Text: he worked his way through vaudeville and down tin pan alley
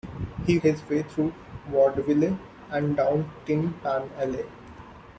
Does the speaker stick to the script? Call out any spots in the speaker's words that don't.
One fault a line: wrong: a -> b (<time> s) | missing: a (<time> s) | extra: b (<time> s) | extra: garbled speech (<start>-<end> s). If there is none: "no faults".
missing: worked (0.6 s)